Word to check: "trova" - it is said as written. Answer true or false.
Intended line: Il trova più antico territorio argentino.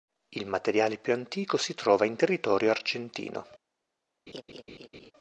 false